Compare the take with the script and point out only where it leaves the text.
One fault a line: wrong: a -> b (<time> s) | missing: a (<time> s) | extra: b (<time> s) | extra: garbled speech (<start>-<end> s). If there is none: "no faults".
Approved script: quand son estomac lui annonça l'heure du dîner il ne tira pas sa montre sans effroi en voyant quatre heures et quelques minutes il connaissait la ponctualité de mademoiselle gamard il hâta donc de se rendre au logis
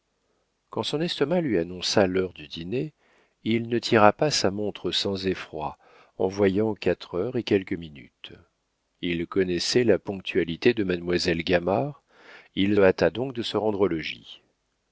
no faults